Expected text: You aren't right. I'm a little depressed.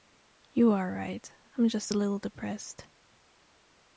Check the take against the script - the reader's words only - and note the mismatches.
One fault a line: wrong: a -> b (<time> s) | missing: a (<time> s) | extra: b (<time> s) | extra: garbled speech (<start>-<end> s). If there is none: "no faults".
wrong: aren't -> are (0.7 s)
extra: just (1.7 s)